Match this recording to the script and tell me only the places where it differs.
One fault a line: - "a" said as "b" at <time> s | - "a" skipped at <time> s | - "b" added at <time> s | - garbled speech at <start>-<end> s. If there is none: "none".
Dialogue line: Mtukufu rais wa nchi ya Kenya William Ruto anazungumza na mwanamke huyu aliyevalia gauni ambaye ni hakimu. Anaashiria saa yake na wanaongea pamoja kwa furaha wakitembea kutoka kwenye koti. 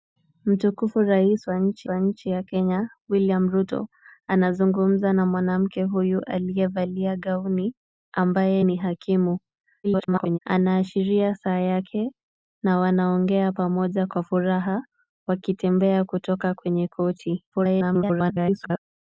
- "wa nchi" added at 1.9 s
- garbled speech at 9.8-10.4 s
- garbled speech at 17.5-18.8 s